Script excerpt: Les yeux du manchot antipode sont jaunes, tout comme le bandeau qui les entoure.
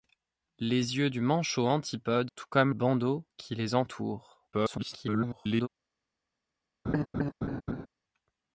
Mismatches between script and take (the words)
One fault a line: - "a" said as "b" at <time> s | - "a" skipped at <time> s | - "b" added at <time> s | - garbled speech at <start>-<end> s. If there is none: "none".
- "sont jaunes" skipped at 2.3 s
- "le" skipped at 2.7 s
- garbled speech at 4.5-5.7 s